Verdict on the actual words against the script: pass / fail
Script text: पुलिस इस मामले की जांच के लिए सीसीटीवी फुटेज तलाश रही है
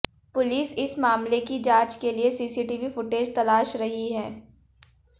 pass